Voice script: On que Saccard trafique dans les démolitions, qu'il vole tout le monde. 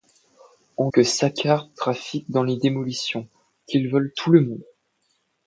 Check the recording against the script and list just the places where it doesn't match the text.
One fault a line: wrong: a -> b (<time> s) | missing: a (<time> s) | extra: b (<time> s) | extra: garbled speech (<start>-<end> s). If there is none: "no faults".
no faults